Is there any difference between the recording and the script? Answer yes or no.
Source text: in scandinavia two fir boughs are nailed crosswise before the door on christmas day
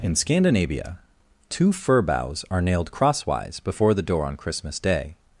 no